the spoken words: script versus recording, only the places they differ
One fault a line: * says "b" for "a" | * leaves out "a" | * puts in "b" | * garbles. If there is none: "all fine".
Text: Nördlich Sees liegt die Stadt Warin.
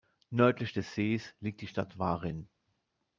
* puts in "des"